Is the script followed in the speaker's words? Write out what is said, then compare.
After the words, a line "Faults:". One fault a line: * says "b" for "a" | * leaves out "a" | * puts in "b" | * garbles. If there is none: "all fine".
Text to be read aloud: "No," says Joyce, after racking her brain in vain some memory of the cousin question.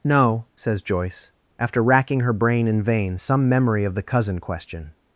"No," says Joyce, after racking her brain in vain some memory of the cousin question.
Faults:
all fine